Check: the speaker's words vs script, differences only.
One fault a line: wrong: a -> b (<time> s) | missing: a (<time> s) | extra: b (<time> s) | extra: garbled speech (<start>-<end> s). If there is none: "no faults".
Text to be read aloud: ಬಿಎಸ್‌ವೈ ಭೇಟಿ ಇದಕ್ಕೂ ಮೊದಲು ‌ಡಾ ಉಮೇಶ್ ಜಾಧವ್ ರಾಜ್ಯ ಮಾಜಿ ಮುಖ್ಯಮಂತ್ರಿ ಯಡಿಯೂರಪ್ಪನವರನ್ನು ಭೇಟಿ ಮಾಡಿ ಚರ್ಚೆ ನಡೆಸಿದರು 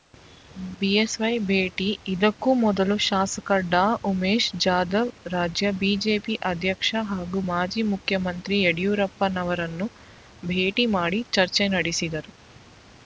extra: ಶಾಸಕ (3.1 s)
extra: ಬಿಜೆಪಿ ಅಧ್ಯಕ್ಷ ಹಾಗೂ (5.8 s)